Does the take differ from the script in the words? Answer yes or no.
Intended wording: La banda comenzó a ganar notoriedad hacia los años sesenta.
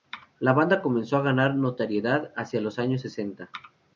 no